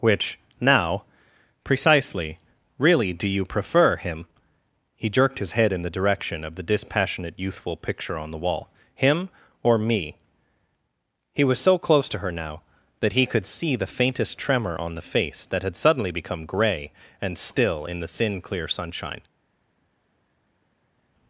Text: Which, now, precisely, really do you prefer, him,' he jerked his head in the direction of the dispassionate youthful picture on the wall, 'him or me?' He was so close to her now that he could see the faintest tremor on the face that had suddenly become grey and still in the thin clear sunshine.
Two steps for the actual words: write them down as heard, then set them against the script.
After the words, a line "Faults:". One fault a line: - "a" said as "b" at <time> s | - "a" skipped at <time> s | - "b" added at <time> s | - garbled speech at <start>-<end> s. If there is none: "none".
Which, now, precisely, really do you prefer, him,' he jerked his head in the direction of the dispassionate youthful picture on the wall, 'him or me?' He was so close to her now that he could see the faintest tremor on the face that had suddenly become grey and still in the thin clear sunshine.
Faults:
none